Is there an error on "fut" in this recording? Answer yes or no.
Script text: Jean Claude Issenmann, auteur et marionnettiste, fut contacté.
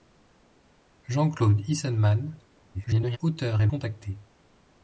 yes